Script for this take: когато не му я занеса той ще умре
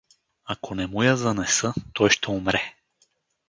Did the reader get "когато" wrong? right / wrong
wrong